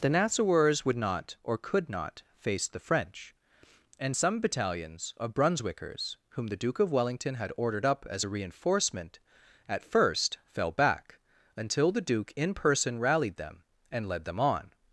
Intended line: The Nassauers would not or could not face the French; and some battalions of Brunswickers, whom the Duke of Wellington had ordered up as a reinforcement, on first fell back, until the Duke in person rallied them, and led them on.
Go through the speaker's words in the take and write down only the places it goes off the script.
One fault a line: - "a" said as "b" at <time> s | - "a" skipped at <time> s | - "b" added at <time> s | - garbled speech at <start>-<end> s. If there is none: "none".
- "on" said as "at" at 9.7 s